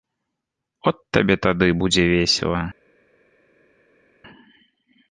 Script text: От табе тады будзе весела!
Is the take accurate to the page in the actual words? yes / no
yes